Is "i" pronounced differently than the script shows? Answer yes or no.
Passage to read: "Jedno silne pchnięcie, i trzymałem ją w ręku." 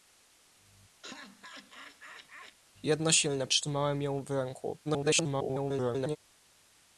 yes